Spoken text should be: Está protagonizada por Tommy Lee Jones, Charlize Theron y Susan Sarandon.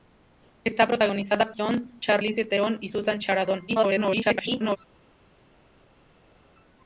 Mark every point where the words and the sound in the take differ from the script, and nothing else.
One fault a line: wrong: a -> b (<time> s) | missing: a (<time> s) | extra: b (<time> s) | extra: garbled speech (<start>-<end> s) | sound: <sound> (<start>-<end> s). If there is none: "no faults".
missing: por Tommy Lee (1.5 s)
extra: garbled speech (3.7-4.8 s)